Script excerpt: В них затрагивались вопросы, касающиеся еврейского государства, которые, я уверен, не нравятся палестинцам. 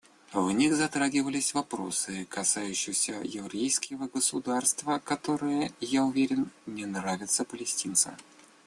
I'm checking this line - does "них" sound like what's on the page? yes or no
yes